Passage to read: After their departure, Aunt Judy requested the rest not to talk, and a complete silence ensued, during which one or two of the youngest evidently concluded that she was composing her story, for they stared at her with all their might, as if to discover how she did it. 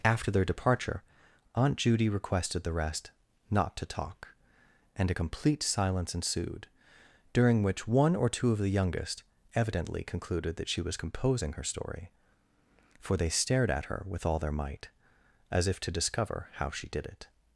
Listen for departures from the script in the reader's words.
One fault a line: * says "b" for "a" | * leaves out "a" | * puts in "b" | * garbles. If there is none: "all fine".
all fine